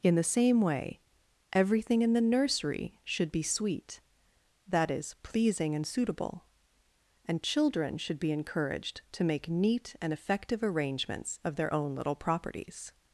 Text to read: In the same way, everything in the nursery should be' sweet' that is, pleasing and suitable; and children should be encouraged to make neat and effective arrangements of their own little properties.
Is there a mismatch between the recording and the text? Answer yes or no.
no